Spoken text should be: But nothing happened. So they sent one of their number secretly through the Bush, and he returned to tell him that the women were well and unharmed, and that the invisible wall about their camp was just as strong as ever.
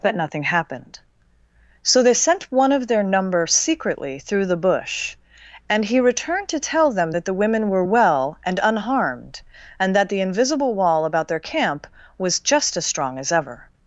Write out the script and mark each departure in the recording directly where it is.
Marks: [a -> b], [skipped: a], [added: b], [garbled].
But nothing happened. So they sent one of their number secretly through the Bush, and he returned to tell [him -> them] that the women were well and unharmed, and that the invisible wall about their camp was just as strong as ever.